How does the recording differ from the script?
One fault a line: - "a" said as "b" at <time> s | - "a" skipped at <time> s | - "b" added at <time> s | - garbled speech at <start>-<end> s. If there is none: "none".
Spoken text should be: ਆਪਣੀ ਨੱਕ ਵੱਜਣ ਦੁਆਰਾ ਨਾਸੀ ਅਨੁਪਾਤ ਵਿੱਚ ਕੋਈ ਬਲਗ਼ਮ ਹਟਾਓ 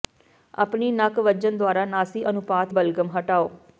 - "ਵਿੱਚ ਕੋਈ" skipped at 2.7 s